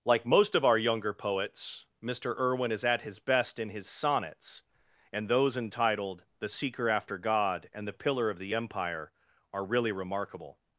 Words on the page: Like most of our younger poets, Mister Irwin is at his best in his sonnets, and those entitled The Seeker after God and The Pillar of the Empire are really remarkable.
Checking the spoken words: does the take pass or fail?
pass